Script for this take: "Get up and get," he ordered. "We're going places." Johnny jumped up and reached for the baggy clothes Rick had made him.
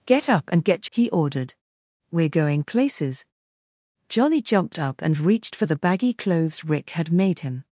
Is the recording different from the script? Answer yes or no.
no